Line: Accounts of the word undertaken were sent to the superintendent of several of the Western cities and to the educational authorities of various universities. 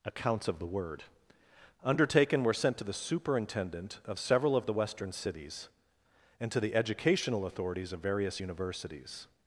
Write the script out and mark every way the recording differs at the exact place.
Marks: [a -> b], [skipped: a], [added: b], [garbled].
Accounts of the word undertaken were sent to the superintendent of several of the Western cities and to the educational authorities of various universities.